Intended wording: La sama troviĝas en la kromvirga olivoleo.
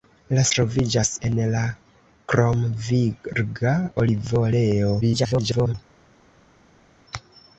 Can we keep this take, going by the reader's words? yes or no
no